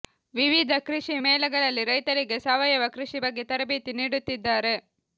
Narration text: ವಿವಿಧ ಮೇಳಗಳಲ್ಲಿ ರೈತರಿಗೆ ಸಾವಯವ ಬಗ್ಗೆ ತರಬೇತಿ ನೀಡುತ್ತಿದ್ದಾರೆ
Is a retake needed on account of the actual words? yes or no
yes